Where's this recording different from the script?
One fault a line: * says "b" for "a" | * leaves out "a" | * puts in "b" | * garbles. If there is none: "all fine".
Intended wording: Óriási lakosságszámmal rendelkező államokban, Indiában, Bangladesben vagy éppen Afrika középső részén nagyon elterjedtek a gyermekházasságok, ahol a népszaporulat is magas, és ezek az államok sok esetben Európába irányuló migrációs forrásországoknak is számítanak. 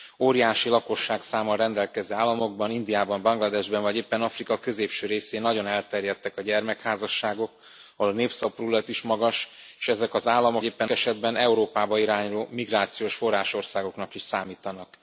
* says "éppen" for "sok"